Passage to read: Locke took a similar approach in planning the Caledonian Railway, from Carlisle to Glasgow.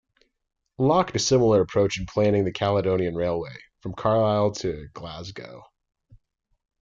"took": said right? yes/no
no